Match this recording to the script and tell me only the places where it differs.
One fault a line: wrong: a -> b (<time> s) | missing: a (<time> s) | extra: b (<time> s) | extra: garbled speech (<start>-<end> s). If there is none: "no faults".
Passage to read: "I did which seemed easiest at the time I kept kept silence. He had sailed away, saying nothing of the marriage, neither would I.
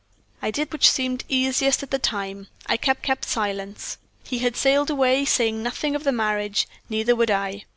no faults